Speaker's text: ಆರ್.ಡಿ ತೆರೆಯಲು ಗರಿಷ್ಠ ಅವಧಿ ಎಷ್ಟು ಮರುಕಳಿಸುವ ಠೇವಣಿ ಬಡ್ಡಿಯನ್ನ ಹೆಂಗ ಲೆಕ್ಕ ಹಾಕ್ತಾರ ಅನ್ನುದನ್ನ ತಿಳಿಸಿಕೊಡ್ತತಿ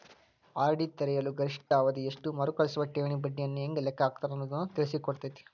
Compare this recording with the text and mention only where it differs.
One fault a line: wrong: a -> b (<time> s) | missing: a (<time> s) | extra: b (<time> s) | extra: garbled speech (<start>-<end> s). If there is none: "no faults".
no faults